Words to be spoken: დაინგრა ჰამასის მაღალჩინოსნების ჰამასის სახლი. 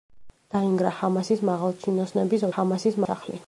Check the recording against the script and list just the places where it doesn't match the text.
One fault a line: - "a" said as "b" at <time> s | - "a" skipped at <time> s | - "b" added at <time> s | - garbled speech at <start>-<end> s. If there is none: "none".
none